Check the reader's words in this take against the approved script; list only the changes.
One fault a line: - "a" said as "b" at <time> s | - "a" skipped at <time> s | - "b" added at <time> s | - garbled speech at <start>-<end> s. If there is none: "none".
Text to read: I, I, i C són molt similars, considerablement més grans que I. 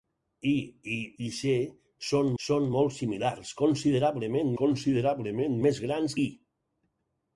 - "són" added at 2.4 s
- "considerablement" added at 4.6 s
- "que" skipped at 6.2 s